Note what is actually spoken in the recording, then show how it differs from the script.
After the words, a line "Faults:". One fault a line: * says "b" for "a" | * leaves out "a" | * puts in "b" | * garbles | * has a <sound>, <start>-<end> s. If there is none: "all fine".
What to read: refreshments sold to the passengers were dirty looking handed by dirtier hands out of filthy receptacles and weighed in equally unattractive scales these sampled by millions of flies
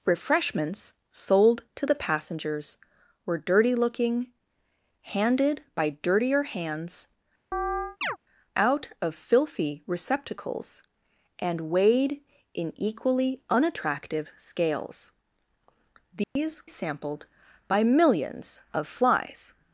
refreshments sold to the passengers were dirty looking handed by dirtier hands out of filthy receptacles and weighed in equally unattractive scales these sampled by millions of flies
Faults:
* has a chirp, 7.5-8.2 s
* has a dropout, 16.2-16.4 s